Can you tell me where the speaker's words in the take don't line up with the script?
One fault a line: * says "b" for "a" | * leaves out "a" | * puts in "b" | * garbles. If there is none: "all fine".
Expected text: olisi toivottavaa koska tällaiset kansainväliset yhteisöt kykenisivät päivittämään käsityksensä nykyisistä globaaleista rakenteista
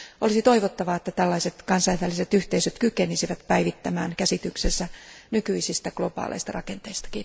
* says "että" for "koska"